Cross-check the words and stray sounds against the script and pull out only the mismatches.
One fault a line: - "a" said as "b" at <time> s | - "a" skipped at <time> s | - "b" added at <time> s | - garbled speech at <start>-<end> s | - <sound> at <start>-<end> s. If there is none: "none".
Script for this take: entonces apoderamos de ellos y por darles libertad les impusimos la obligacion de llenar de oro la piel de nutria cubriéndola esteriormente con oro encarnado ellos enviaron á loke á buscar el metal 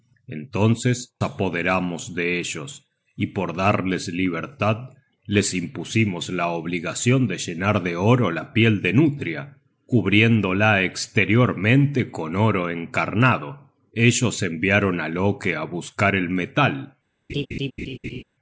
- laugh at 17.3-18.2 s